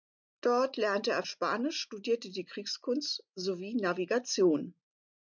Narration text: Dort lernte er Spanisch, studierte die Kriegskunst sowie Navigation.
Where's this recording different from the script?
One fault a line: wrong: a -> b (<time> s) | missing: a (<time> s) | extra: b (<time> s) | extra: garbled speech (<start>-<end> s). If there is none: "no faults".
no faults